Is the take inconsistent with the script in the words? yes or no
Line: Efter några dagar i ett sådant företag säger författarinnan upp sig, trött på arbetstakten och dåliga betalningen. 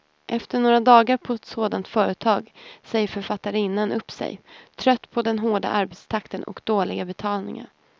yes